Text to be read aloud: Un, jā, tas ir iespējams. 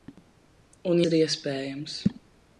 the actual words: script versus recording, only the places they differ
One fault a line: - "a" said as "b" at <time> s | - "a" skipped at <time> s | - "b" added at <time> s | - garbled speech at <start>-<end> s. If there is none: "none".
- "jā tas" skipped at 1.0 s